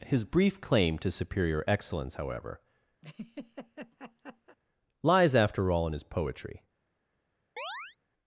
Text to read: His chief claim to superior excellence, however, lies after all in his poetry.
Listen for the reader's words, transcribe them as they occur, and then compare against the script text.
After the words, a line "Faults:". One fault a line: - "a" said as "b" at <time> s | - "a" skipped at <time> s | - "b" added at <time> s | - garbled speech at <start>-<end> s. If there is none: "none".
His brief claim to superior excellence, however, lies after all in his poetry.
Faults:
- "chief" said as "brief" at 0.2 s